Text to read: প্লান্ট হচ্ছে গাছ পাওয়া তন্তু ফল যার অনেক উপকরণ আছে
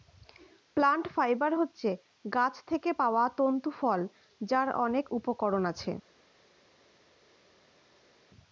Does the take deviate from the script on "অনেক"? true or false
false